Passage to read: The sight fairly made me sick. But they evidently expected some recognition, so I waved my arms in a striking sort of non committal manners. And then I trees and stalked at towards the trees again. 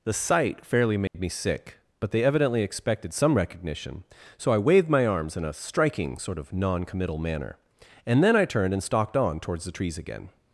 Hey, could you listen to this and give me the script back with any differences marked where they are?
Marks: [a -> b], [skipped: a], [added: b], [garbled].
The sight fairly made me sick. But they evidently expected some recognition, so I waved my arms in a striking sort of non committal [manners. -> manner] And then I [trees -> turned] and stalked [at -> on] towards the trees again.